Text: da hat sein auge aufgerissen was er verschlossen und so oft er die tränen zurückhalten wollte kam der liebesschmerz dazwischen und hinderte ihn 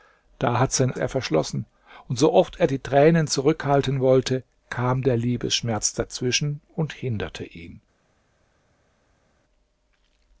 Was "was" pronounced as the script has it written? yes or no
no